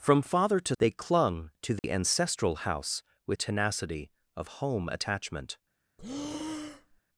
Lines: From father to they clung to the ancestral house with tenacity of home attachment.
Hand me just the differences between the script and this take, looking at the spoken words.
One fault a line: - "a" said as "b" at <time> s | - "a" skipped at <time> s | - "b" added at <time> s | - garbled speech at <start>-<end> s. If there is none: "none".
none